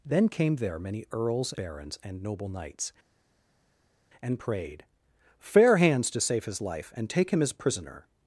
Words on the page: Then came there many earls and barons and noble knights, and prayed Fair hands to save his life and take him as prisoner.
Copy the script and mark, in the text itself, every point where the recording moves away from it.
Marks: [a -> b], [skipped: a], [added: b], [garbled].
Then came there many earls [skipped: and] barons and noble knights, and prayed Fair hands to save his life and take him as prisoner.